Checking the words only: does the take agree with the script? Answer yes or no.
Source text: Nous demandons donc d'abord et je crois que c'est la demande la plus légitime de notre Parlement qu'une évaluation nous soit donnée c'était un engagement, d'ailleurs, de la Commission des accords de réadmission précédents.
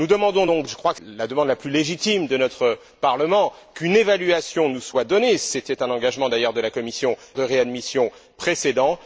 no